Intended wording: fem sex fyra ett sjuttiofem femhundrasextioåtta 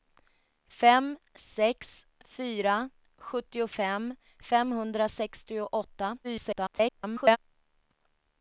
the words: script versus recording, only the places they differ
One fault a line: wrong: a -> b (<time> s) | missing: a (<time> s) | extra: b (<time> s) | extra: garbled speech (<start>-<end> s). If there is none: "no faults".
missing: ett (2.9 s)
extra: garbled speech (6.2-7.4 s)